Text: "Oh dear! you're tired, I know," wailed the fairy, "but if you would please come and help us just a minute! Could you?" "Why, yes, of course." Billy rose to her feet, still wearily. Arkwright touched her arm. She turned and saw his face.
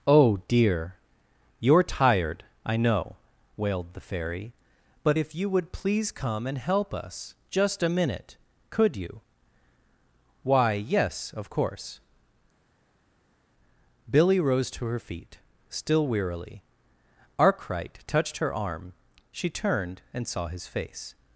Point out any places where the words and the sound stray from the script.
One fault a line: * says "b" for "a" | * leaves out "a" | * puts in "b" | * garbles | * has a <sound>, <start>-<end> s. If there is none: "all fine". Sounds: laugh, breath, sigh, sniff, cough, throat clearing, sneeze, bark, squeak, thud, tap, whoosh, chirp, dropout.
all fine